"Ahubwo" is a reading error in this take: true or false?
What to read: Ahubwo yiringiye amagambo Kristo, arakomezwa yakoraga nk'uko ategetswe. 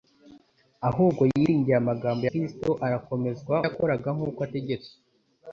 false